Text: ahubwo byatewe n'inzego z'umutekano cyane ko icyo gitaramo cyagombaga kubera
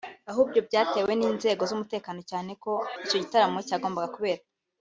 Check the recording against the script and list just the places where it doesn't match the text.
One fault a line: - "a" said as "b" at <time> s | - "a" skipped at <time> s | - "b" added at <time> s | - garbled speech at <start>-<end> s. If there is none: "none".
none